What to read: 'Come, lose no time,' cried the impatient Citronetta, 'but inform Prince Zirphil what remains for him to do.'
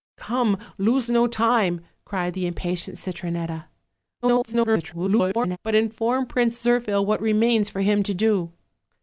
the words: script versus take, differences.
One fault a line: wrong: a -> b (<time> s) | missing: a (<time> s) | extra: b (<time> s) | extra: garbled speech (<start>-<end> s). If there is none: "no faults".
extra: garbled speech (4.2-5.6 s)